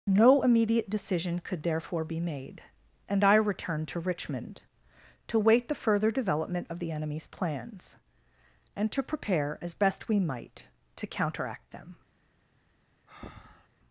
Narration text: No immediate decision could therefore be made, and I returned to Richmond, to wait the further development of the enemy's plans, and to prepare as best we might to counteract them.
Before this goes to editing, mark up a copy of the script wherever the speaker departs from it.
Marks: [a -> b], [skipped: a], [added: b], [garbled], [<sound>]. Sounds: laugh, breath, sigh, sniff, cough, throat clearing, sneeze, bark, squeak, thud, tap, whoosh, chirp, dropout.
No immediate decision could therefore be made, and I returned to Richmond, to wait the further development of the enemy's plans, and to prepare as best we might to counteract them. [breath]